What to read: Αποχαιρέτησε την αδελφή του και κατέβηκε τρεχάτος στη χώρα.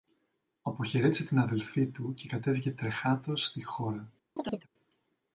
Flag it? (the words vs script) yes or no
no